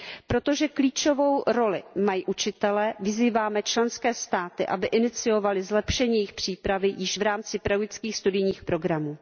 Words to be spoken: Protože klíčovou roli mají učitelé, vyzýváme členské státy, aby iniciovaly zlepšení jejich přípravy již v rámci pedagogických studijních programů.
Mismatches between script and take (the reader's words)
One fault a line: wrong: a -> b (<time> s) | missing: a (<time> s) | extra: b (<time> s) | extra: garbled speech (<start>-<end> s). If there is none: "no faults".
no faults